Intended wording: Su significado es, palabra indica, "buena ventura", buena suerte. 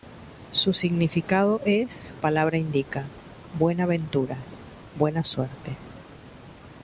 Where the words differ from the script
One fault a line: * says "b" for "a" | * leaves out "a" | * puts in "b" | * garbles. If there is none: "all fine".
all fine